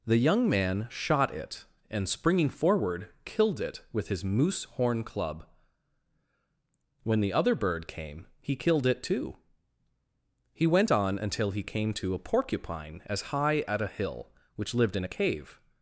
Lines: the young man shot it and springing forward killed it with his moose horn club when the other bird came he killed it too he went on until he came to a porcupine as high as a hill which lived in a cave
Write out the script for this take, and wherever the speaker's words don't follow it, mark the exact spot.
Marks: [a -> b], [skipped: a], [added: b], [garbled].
the young man shot it and springing forward killed it with his moose horn club when the other bird came he killed it too he went on until he came to a porcupine as high [as -> at] a hill which lived in a cave